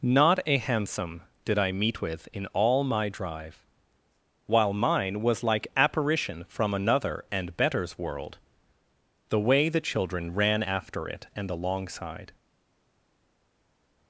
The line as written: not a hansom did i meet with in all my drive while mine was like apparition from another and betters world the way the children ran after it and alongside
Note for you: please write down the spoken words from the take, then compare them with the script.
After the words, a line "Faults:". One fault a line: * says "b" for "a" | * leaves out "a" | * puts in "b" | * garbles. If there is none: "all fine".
not a hansom did i meet with in all my drive while mine was like apparition from another and betters world the way the children ran after it and alongside
Faults:
all fine